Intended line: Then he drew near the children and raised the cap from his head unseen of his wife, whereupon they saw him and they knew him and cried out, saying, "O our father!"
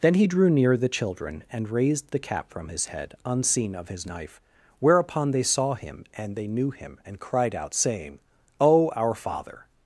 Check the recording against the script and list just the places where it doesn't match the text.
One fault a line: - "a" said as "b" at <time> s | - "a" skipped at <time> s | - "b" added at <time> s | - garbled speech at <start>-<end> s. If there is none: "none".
- "wife" said as "knife" at 4.0 s